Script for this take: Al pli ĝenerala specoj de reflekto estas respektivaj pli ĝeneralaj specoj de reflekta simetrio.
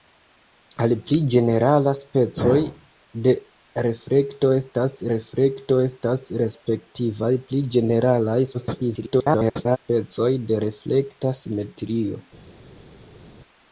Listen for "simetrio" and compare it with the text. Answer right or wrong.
right